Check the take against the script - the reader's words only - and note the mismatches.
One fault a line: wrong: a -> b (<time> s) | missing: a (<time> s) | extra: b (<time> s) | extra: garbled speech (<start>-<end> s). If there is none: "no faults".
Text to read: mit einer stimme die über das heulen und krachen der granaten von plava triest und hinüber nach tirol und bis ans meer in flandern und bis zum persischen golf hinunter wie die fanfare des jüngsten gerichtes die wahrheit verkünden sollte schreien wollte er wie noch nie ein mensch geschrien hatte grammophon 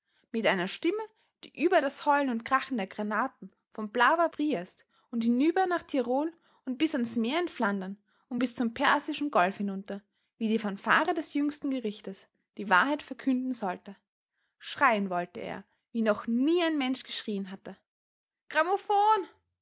no faults